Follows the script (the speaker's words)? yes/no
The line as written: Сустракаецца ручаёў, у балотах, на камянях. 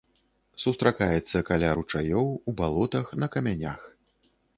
no